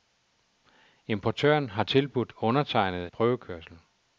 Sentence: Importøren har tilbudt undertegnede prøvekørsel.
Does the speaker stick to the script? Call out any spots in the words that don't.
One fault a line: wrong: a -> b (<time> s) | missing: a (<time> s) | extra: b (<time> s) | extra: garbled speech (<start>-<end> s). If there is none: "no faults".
no faults